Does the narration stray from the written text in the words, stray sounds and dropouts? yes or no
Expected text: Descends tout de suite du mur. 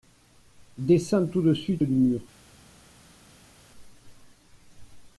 no